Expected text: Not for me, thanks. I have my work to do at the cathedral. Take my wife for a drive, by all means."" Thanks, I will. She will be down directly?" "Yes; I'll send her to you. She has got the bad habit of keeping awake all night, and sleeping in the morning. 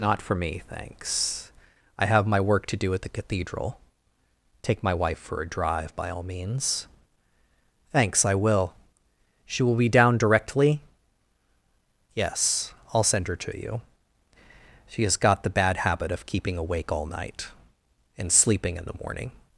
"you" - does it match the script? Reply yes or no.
yes